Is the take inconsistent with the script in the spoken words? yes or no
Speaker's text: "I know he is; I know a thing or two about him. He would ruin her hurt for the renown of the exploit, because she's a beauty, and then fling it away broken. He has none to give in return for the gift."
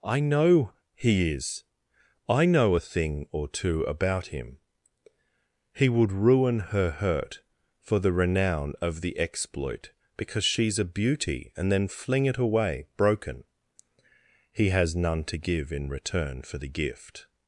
no